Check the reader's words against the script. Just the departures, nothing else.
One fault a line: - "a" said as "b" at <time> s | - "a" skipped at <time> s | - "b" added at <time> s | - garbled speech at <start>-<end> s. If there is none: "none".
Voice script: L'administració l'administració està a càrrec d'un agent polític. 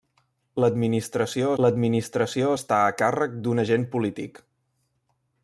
none